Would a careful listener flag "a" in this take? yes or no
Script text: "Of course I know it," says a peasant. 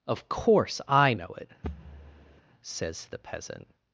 yes